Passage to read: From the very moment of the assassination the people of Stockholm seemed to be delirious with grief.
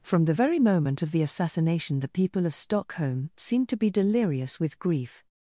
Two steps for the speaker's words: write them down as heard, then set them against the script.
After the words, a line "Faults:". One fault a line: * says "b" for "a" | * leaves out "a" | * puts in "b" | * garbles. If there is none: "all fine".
From the very moment of the assassination the people of Stockholm seemed to be delirious with grief.
Faults:
all fine